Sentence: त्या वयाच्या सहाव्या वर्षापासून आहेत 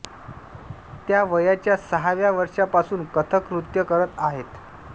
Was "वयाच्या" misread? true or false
false